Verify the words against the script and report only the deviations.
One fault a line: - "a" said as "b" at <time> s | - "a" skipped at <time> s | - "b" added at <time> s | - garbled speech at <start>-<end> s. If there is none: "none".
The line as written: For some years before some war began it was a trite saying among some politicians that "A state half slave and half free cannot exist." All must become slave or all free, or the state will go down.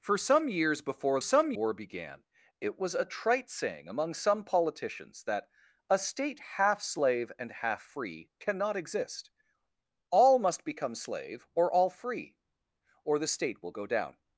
none